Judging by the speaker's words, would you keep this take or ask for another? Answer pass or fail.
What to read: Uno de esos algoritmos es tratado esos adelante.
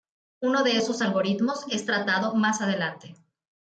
fail